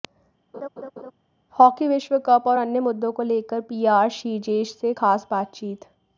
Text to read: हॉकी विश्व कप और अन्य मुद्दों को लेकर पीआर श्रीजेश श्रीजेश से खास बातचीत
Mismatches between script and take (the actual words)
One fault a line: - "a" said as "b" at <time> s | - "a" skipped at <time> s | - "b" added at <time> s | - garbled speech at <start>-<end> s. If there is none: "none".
- "श्रीजेश" skipped at 4.7 s